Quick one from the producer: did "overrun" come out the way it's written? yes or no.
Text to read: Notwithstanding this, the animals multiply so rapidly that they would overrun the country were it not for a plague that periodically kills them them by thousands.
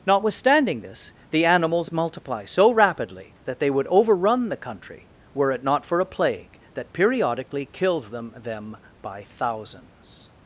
yes